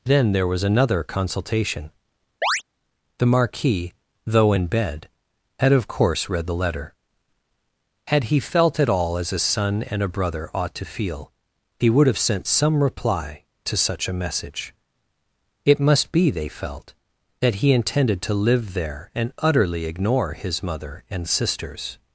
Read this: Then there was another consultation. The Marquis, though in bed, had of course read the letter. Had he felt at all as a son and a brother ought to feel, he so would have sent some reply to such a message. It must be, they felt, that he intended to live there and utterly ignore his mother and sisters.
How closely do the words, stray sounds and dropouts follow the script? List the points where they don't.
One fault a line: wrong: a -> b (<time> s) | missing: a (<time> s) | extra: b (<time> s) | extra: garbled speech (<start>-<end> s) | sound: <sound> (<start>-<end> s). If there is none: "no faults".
sound: chirp (2.4-2.6 s)
missing: so (11.9 s)